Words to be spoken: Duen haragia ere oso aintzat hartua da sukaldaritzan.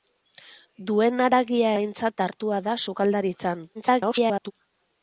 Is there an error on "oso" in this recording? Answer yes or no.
yes